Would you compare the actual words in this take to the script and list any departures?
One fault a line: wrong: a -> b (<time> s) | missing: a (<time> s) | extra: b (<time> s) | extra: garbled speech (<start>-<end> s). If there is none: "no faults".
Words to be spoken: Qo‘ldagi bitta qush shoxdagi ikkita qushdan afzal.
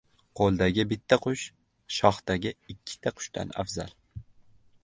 no faults